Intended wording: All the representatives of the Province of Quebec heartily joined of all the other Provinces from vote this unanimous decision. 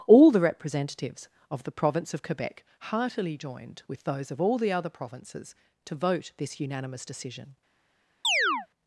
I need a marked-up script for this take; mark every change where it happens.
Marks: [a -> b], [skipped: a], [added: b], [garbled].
All the representatives of the Province of Quebec heartily joined [added: with those] of all the other Provinces [from -> to] vote this unanimous decision.